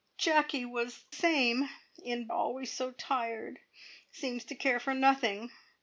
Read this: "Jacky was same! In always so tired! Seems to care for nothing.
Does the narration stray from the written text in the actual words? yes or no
no